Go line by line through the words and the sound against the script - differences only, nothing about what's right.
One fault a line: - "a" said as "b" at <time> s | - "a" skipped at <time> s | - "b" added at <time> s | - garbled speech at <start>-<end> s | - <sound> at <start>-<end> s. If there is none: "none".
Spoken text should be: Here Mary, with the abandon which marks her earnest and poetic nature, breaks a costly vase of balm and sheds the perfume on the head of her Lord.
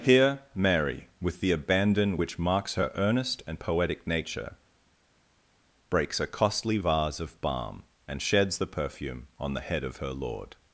none